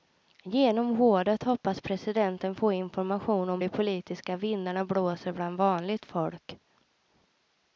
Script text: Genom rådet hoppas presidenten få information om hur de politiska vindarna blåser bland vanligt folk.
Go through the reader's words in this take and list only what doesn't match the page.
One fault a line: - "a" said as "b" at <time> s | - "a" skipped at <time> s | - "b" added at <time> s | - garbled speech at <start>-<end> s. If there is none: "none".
- "hur" skipped at 3.6 s